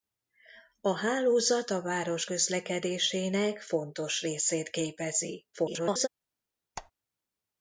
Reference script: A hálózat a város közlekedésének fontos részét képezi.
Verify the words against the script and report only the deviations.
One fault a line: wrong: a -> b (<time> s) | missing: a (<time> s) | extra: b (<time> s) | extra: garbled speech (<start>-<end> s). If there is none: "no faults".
extra: garbled speech (5.5-6.1 s)